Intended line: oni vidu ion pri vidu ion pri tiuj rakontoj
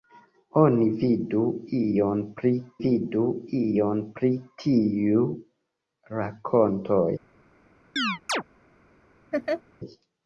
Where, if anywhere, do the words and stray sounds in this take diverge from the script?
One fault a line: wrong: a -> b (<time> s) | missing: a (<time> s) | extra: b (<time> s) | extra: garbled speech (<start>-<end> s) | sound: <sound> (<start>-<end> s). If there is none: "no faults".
sound: chirp (8.0-8.4 s)
sound: laugh (9.3-9.6 s)